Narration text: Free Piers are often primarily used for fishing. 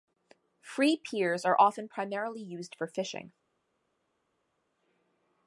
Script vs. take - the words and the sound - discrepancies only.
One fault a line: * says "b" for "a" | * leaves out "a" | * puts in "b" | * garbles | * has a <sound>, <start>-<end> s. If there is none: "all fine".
all fine